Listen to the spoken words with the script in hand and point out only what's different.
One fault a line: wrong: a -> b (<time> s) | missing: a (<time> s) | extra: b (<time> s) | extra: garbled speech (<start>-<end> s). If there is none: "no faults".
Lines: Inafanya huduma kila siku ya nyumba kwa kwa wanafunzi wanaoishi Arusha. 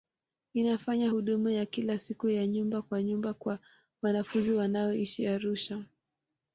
extra: ya (1.5 s)
extra: nyumba (3.0 s)